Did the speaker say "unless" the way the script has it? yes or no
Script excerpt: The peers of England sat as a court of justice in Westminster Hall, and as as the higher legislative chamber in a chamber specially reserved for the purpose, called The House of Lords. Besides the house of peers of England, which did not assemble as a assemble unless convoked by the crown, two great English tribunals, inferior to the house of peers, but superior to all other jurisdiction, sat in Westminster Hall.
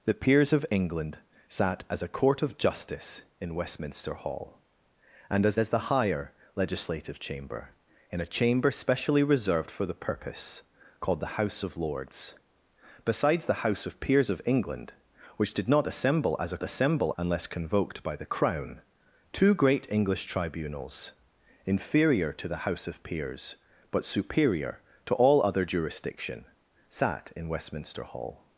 yes